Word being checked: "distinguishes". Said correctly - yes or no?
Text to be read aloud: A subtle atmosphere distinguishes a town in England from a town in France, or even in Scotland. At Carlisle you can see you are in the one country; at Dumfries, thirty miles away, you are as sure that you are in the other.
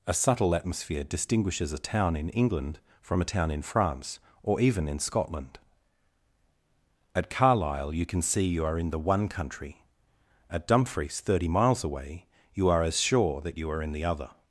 yes